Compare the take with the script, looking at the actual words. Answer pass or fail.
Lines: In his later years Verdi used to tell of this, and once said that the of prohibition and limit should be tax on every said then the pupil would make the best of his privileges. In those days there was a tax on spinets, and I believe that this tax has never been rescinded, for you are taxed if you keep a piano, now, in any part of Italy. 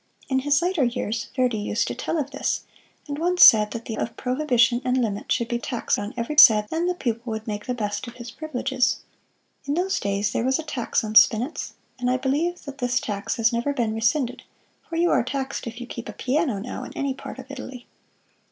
pass